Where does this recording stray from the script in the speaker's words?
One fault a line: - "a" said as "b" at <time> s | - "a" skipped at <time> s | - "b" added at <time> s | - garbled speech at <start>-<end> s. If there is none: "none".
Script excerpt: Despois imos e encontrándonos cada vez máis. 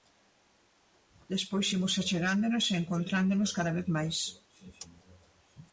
- "achegándonos" added at 2.0 s